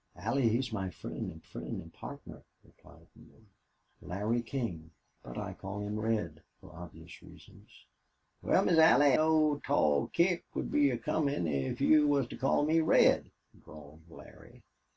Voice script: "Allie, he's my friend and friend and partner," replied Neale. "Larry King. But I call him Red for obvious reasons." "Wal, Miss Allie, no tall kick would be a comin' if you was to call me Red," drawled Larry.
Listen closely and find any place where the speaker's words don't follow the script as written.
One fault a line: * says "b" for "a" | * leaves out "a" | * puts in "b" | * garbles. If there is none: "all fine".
all fine